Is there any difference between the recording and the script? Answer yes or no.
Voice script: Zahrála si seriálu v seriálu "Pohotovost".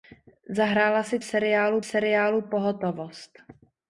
no